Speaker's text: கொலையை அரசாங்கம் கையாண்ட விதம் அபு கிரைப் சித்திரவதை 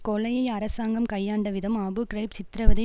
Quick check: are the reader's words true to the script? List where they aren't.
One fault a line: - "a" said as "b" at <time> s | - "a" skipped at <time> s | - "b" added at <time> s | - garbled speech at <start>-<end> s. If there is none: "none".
none